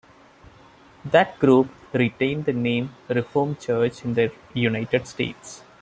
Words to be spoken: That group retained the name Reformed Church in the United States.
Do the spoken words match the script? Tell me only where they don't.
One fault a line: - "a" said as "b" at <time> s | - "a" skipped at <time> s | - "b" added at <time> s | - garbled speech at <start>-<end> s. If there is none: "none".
none